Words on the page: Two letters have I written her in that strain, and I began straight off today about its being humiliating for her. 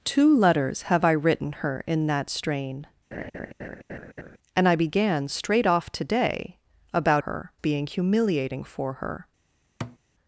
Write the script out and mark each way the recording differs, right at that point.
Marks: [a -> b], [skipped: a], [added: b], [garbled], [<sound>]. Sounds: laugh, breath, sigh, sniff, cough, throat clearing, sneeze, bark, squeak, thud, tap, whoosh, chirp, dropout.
Two letters have I written her in that strain, [laugh] and I began straight off today about [its -> her] being humiliating for her. [thud]